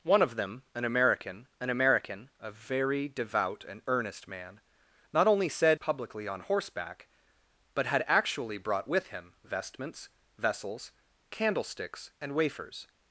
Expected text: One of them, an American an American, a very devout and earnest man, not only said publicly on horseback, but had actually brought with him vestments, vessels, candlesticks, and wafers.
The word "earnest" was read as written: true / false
true